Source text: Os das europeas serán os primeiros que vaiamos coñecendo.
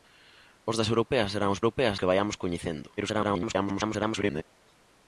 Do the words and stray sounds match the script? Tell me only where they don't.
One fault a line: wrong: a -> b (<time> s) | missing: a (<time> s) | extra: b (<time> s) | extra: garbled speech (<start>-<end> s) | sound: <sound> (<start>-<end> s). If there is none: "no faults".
wrong: primeiros -> europeas (1.6 s)
extra: garbled speech (3.0-4.4 s)